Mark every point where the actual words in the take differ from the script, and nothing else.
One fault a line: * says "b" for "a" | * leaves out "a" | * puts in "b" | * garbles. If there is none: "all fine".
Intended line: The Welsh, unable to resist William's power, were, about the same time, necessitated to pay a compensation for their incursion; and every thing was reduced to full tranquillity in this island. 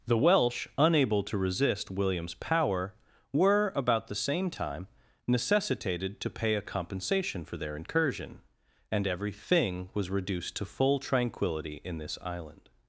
all fine